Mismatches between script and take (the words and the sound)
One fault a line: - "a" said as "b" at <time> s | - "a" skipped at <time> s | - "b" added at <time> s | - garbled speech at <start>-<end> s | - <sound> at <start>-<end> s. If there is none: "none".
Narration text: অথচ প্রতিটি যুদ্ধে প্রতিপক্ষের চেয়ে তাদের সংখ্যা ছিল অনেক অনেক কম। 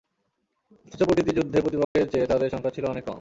- dropout at 1.8-2.0 s
- "অনেক" skipped at 3.0 s